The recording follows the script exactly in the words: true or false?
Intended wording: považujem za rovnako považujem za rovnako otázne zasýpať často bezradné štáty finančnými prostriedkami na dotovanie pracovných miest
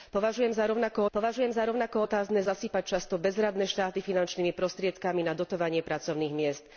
true